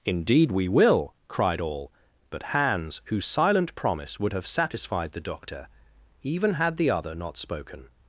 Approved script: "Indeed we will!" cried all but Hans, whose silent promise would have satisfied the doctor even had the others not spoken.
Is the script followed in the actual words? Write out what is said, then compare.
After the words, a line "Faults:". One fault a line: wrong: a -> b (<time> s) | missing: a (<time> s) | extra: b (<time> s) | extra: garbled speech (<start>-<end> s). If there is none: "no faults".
"Indeed we will!" cried all but Hans, whose silent promise would have satisfied the doctor even had the other not spoken.
Faults:
wrong: others -> other (6.9 s)